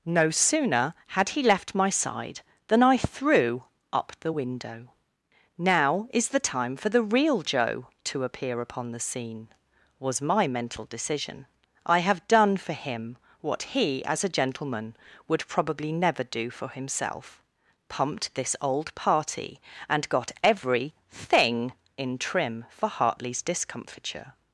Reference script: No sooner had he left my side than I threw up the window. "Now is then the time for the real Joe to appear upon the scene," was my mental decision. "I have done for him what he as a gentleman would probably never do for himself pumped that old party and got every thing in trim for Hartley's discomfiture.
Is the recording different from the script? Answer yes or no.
yes